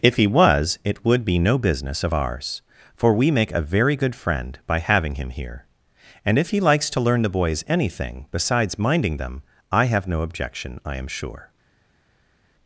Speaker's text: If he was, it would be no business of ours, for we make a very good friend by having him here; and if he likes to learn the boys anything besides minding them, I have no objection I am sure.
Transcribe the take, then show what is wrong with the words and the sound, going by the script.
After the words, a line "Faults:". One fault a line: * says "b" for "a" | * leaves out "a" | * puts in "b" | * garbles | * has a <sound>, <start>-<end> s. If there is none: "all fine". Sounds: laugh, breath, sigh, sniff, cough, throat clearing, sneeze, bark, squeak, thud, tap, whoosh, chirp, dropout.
If he was, it would be no business of ours, for we make a very good friend by having him here; and if he likes to learn the boys anything besides minding them, I have no objection I am sure.
Faults:
all fine